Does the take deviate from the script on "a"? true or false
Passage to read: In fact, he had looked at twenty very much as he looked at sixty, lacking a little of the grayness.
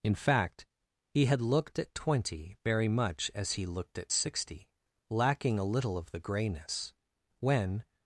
false